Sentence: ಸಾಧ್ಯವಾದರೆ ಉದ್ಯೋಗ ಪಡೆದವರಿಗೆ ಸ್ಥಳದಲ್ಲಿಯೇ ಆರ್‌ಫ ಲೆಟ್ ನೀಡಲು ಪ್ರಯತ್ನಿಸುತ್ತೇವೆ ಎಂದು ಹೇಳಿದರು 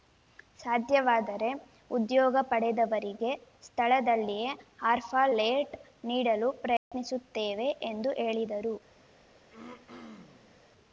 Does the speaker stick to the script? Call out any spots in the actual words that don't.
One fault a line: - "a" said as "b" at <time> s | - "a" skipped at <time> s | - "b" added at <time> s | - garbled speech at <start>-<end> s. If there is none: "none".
none